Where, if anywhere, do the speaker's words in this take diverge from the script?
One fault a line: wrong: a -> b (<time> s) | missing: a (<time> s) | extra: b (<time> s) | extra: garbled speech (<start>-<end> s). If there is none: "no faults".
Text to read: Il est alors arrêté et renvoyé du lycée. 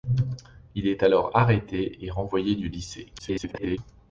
extra: garbled speech (3.2-3.8 s)